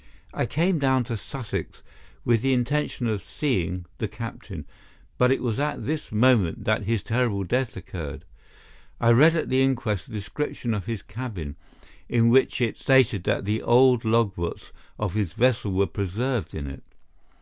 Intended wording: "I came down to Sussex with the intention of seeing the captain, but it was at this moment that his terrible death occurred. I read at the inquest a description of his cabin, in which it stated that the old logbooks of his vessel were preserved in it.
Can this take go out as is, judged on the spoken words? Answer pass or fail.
pass